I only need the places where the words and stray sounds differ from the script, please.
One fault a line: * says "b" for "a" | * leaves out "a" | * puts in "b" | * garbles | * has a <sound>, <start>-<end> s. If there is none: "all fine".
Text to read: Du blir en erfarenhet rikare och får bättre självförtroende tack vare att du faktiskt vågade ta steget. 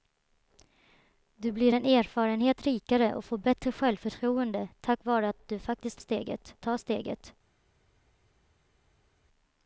* puts in "att"
* says "steget" for "vågade"